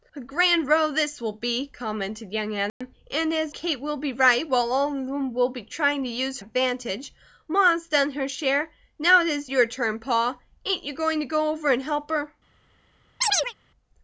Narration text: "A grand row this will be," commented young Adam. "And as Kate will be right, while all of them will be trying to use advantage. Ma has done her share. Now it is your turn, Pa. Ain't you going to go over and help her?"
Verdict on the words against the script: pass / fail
pass